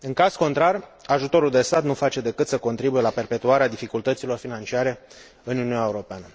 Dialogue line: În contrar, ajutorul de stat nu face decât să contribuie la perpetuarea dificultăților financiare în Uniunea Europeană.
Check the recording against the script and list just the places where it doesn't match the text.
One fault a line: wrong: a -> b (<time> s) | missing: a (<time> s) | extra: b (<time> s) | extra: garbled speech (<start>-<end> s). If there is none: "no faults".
extra: caz (0.1 s)